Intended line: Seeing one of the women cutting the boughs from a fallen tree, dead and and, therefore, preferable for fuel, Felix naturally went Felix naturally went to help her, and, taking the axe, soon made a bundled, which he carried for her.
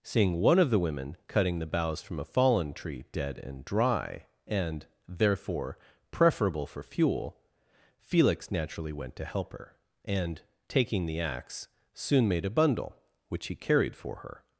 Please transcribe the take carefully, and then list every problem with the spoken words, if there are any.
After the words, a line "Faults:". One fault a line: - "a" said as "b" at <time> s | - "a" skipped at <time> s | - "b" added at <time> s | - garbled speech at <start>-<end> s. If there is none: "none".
Seeing one of the women cutting the boughs from a fallen tree, dead and dry, and, therefore, preferable for fuel, Felix naturally went to help her, and, taking the axe, soon made a bundle, which he carried for her.
Faults:
- "dry" added at 3.6 s
- "Felix naturally went" skipped at 9.2 s
- "bundled" said as "bundle" at 12.5 s